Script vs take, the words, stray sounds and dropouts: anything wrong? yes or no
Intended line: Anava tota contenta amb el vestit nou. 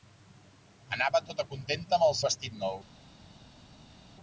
no